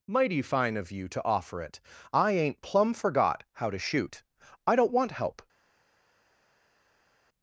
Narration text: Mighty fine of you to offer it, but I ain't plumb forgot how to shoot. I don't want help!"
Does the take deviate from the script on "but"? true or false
true